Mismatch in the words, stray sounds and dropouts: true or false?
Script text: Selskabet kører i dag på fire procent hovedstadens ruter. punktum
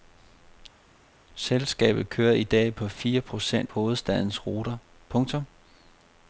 false